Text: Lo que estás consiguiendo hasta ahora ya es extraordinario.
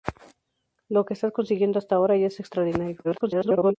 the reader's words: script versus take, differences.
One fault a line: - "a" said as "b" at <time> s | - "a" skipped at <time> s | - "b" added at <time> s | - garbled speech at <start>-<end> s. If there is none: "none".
- garbled speech at 3.0-3.8 s